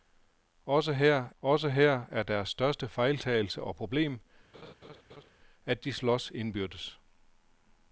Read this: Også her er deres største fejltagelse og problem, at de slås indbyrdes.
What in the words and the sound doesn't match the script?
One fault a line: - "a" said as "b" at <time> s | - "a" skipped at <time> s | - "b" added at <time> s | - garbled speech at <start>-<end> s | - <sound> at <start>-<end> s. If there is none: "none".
- "også her" added at 1.4 s
- laugh at 4.5-5.3 s